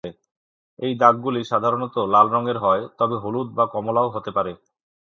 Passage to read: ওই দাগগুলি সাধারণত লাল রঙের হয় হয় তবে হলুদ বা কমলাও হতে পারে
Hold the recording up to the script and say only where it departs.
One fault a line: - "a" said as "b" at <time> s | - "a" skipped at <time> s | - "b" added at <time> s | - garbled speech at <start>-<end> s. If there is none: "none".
- "ওই" said as "এই" at 0.8 s
- "হয়" skipped at 2.8 s